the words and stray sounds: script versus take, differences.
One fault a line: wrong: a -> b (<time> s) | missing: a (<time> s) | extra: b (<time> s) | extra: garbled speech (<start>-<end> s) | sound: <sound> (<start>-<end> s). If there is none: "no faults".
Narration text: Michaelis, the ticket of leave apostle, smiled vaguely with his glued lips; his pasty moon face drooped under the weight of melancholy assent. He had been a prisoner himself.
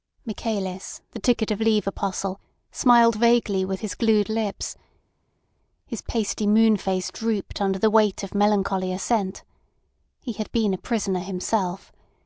no faults